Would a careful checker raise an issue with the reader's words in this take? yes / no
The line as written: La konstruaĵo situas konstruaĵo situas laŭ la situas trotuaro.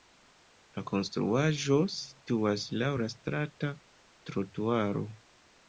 yes